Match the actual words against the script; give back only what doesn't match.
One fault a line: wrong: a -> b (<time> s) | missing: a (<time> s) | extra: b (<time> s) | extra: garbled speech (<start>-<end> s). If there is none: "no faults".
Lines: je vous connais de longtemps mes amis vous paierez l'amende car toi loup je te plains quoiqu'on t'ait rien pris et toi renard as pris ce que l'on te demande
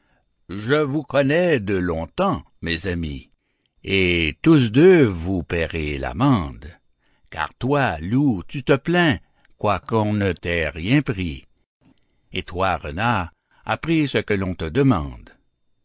extra: et tous deux (3.8 s)
wrong: je -> tu (8.5 s)
extra: ne (10.1 s)